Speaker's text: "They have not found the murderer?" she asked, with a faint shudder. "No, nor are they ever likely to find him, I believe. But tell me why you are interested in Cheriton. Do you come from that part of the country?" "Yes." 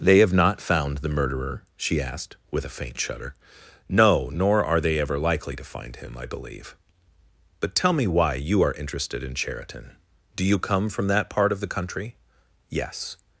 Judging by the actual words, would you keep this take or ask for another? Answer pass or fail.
pass